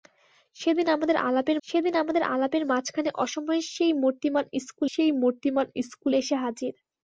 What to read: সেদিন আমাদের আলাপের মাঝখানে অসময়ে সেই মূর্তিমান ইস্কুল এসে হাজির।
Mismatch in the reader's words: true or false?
true